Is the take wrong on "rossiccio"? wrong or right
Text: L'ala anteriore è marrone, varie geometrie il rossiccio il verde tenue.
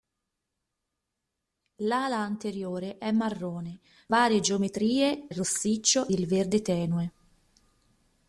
right